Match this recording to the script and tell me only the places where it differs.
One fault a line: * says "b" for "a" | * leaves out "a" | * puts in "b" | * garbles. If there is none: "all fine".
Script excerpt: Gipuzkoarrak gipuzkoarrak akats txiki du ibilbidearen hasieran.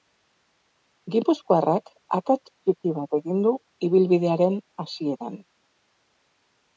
* leaves out "gipuzkoarrak"
* puts in "bat egin"